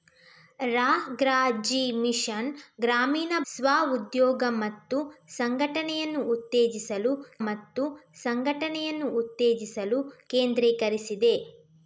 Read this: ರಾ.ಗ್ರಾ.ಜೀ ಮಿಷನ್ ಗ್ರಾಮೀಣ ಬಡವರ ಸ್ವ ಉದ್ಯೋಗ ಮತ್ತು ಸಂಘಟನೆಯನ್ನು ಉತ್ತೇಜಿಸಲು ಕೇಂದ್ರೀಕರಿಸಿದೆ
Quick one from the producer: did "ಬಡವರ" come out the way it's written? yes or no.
no